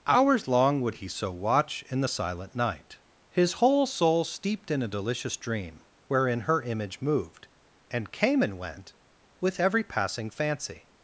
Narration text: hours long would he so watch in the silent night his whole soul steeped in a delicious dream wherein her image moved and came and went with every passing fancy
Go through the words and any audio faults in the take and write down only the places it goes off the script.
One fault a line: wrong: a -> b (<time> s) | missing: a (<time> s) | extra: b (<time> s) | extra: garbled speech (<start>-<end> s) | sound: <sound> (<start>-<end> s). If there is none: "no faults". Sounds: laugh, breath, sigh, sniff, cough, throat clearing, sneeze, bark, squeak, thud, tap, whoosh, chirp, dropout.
no faults